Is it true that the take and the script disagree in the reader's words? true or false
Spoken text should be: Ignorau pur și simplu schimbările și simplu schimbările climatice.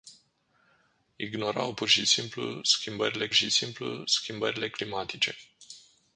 false